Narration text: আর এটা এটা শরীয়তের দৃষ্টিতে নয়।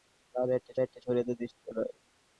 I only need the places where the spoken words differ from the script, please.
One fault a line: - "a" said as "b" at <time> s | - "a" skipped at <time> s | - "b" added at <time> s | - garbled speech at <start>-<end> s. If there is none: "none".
none